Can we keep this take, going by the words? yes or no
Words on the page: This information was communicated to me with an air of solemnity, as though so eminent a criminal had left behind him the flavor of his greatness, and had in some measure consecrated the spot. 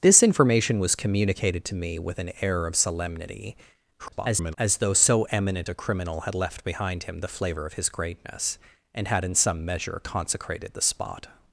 no